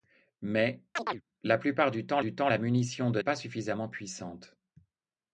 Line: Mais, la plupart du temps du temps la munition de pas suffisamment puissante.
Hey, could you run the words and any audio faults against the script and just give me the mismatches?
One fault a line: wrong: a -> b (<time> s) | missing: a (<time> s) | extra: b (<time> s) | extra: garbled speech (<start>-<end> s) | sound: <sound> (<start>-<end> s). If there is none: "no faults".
sound: chirp (1.0-1.2 s)